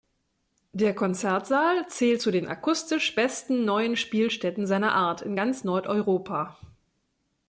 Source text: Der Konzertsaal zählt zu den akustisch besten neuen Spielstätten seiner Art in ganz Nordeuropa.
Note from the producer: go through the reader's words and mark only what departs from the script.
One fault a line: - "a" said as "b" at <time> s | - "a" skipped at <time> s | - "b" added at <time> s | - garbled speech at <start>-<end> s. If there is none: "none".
none